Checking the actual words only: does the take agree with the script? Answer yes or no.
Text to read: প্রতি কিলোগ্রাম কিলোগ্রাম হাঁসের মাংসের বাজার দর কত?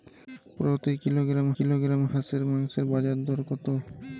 yes